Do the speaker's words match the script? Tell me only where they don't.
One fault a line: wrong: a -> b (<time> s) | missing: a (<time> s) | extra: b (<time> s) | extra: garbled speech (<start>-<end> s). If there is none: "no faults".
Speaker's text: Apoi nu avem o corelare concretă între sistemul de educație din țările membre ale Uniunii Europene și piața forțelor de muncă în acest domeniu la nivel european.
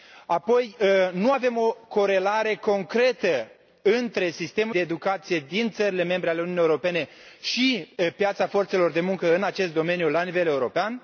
no faults